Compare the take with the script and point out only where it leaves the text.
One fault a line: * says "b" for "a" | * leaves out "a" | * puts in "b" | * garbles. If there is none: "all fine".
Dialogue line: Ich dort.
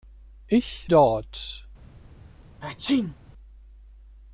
all fine